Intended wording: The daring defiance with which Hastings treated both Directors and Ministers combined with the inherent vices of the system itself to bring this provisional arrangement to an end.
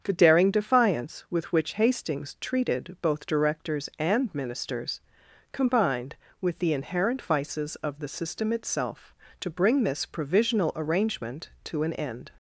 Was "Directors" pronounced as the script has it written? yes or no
yes